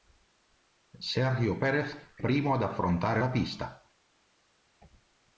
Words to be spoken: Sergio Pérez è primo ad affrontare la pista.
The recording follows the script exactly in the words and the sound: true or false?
true